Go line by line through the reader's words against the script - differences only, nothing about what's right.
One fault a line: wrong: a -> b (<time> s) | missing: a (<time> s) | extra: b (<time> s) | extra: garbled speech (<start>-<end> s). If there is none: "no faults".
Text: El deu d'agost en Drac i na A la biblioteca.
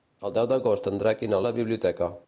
no faults